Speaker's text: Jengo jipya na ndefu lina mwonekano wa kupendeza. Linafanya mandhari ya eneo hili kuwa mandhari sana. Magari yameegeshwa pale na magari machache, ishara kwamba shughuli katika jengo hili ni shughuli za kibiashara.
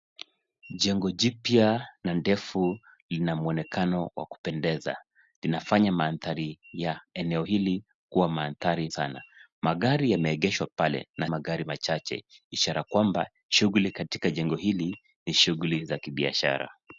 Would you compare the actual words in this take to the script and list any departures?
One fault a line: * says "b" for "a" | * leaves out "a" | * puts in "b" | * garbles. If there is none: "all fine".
all fine